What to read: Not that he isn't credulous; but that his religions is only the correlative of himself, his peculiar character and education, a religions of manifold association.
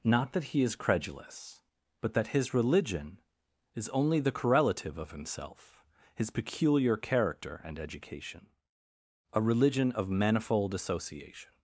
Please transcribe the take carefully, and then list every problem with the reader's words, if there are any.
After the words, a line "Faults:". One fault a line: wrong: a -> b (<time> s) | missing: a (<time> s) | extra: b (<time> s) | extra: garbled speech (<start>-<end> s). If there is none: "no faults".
Not that he is credulous; but that his religion is only the correlative of himself, his peculiar character and education, a religion of manifold association.
Faults:
wrong: isn't -> is (0.6 s)
wrong: religions -> religion (2.5 s)
wrong: religions -> religion (9.4 s)